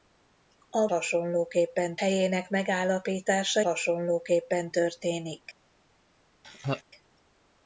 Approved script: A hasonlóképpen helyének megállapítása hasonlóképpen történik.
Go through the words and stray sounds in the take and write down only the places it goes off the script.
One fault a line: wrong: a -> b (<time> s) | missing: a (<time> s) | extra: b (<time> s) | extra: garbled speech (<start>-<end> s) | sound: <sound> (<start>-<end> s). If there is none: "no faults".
sound: laugh (6.4-6.8 s)